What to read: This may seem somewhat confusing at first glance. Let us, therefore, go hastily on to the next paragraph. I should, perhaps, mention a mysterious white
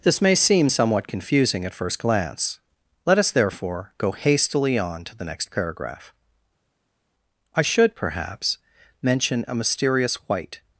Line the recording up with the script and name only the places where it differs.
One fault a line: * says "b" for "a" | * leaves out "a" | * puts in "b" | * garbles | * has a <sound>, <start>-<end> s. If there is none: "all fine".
all fine